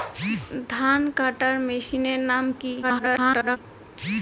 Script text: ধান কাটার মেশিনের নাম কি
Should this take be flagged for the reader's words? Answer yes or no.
yes